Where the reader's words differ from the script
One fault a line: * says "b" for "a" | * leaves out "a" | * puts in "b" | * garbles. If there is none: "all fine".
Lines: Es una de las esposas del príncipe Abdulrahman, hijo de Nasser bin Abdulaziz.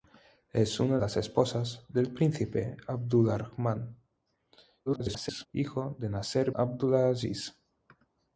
* leaves out "de"
* garbles
* leaves out "bin"